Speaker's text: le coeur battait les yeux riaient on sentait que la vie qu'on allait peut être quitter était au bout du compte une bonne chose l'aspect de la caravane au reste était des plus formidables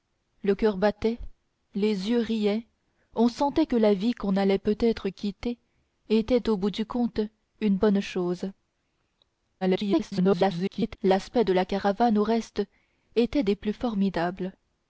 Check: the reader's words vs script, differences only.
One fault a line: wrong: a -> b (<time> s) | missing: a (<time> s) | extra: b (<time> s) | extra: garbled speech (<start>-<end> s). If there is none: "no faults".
extra: garbled speech (9.6-11.0 s)